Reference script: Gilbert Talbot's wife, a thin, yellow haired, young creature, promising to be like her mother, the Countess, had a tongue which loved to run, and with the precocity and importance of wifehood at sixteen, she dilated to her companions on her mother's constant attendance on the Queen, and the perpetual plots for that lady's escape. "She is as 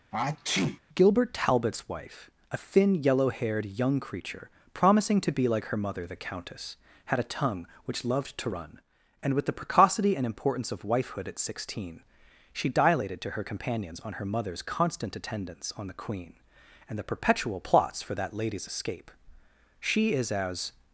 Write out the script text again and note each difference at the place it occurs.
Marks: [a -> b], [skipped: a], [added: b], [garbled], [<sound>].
[sneeze] Gilbert Talbot's wife, a thin, yellow haired, young creature, promising to be like her mother, the Countess, had a tongue which loved to run, and with the precocity and importance of wifehood at sixteen, she dilated to her companions on her mother's constant attendance on the Queen, and the perpetual plots for that lady's escape. "She is as